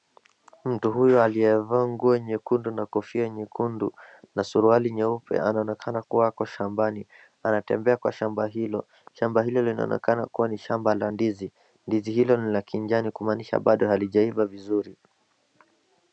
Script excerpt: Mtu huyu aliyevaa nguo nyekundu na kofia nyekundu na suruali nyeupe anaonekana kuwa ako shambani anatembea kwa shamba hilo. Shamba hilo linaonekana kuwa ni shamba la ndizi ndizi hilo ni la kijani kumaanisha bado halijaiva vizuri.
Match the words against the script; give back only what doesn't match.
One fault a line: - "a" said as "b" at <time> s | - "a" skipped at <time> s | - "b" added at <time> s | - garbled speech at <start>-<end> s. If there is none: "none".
none